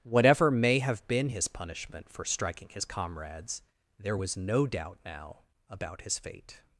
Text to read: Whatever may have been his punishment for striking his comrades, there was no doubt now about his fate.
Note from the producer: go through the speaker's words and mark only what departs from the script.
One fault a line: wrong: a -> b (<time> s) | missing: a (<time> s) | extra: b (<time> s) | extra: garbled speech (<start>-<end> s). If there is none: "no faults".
no faults